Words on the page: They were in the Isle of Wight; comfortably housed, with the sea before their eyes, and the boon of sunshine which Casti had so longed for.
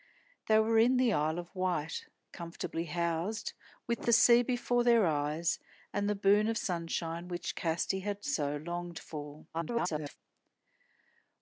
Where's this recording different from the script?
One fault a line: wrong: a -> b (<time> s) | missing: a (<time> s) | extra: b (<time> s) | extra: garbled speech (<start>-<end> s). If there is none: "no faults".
extra: garbled speech (9.5-10.2 s)